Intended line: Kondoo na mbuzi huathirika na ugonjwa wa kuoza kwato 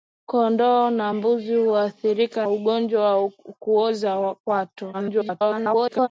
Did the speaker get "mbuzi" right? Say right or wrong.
right